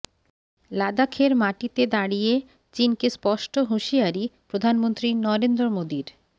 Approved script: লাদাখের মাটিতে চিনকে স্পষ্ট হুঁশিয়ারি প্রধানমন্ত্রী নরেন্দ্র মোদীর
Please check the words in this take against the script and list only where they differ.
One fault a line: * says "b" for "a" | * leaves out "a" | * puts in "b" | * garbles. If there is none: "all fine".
* puts in "দাঁড়িয়ে"